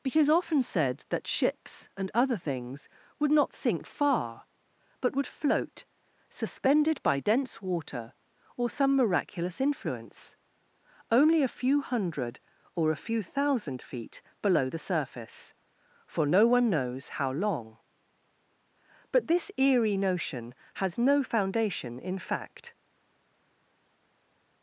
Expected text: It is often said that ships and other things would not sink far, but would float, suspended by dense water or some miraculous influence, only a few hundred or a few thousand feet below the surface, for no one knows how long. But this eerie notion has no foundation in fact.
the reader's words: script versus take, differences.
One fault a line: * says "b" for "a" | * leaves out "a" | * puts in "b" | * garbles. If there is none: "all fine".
all fine